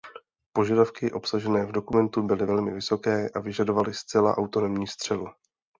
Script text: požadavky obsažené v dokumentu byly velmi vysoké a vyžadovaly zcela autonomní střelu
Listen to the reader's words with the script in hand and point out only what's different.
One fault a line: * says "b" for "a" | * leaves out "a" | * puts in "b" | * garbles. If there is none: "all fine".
all fine